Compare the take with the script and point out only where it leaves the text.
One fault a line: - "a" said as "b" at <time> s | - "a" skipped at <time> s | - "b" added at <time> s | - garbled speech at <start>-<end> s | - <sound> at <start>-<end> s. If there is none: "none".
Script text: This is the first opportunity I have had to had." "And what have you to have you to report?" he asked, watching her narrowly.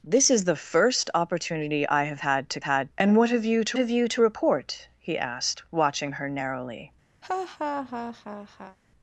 - laugh at 7.2-8.8 s